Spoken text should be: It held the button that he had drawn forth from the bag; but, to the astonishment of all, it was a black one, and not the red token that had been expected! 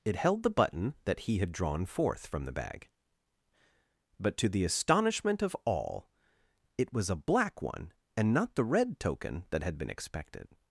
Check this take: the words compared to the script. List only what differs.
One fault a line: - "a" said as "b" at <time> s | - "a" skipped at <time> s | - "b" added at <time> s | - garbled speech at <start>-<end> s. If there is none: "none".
none